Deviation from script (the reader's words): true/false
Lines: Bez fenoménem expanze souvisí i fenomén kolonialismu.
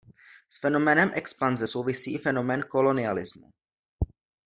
true